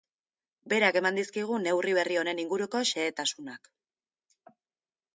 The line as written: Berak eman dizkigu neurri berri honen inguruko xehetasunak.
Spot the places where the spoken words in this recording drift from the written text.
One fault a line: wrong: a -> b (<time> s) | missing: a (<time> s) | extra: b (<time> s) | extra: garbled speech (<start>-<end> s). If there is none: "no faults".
no faults